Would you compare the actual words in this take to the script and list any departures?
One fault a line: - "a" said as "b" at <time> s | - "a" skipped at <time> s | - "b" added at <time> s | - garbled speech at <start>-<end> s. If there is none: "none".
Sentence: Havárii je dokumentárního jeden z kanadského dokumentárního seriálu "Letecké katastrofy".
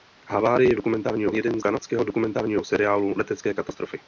none